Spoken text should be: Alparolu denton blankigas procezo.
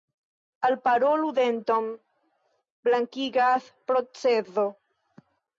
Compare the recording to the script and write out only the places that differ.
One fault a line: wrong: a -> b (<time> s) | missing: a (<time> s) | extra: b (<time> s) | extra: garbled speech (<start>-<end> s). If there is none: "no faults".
no faults